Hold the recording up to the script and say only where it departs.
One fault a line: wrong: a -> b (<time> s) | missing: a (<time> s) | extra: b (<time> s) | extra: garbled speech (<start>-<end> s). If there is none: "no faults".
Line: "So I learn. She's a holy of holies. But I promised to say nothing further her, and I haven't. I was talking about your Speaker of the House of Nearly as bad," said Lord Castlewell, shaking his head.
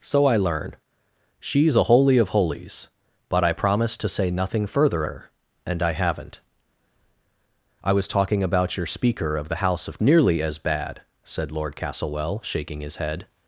no faults